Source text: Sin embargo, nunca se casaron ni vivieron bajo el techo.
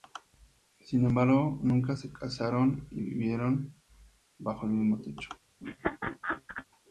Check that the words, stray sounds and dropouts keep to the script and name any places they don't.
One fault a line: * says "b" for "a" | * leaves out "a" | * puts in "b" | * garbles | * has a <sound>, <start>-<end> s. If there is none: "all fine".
* puts in "mismo"
* has a laugh, 5.6-6.7 s